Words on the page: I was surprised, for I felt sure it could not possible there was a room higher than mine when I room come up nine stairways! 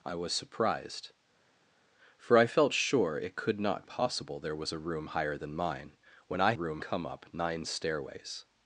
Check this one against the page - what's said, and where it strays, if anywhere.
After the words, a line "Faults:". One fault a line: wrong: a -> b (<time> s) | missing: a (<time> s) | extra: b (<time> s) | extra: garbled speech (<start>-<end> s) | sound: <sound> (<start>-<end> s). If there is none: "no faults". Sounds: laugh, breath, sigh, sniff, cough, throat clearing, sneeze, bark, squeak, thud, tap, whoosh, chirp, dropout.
I was surprised, for I felt sure it could not possible there was a room higher than mine when I room come up nine stairways!
Faults:
no faults